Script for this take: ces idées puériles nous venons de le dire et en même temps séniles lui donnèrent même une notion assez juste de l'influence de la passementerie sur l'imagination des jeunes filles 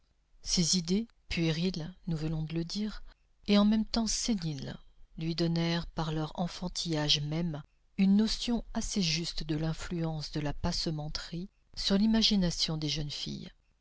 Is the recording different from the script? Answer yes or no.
yes